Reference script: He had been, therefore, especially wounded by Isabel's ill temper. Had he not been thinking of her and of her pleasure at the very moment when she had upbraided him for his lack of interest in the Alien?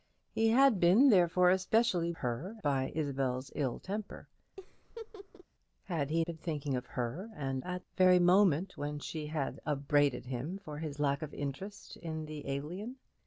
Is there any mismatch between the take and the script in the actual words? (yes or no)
yes